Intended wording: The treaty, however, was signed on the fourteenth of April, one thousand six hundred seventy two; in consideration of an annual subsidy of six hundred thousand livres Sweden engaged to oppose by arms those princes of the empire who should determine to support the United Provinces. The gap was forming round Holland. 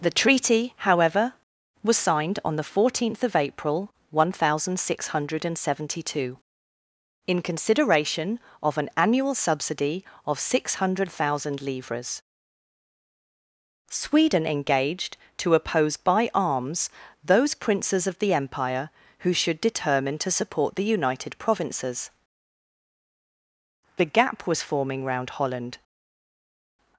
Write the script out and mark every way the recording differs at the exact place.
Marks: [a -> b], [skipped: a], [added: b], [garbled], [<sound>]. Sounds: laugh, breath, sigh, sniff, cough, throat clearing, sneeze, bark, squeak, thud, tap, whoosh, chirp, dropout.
The treaty, however, was signed on the fourteenth of April, one thousand six hundred seventy two; in consideration of an annual subsidy of six hundred thousand livres Sweden engaged to oppose by arms those princes of the empire who should determine to support the United Provinces. The gap was forming round Holland.